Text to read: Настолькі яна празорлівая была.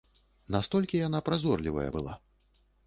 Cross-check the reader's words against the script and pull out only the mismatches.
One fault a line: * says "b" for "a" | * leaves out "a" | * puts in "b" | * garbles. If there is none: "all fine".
all fine